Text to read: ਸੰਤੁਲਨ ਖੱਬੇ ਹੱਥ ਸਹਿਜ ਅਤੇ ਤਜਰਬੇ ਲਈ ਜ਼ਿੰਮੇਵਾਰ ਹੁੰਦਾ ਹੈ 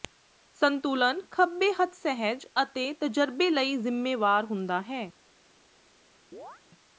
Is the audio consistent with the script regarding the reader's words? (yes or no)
yes